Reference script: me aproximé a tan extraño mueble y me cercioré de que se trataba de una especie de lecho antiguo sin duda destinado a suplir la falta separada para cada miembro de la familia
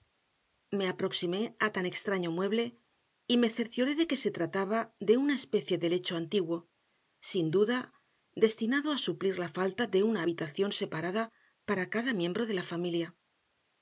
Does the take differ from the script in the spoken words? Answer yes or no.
yes